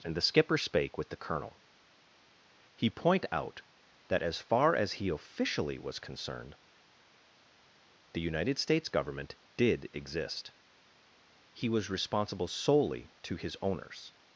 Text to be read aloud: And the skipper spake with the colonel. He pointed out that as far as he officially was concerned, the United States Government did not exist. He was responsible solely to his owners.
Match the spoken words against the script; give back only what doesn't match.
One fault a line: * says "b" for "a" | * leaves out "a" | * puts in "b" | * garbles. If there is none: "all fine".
* says "point" for "pointed"
* leaves out "not"